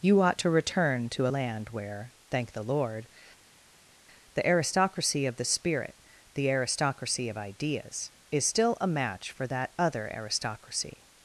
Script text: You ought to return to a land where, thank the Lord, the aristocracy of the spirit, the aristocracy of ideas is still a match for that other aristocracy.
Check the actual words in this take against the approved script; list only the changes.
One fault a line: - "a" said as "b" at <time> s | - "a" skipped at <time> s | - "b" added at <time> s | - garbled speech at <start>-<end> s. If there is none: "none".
- "a" skipped at 1.3 s